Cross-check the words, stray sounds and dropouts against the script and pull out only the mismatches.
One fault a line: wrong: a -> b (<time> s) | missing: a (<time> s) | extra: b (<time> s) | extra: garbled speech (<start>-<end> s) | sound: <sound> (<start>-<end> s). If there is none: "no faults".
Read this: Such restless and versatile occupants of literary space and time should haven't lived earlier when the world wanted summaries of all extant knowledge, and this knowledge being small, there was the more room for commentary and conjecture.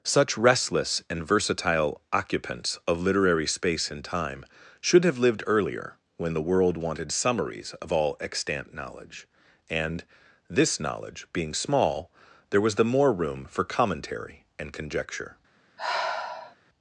wrong: haven't -> have (5.0 s)
sound: sigh (15.8-16.6 s)